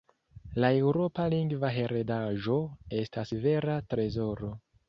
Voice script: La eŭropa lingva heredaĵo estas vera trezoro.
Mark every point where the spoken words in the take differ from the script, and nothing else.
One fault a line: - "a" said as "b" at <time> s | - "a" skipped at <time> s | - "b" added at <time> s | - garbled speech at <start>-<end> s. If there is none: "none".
none